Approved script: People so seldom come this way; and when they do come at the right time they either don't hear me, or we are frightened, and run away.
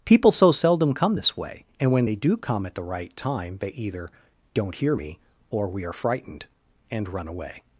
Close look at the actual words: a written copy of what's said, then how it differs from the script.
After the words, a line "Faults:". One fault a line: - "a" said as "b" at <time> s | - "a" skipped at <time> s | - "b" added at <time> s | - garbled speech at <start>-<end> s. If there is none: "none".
People so seldom come this way; and when they do come at the right time they either don't hear me, or we are frightened, and run away.
Faults:
none